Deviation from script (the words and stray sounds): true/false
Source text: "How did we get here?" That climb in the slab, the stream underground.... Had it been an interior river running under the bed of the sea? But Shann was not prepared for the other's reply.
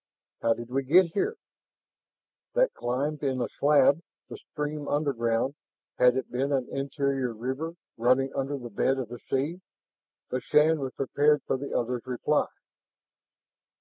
true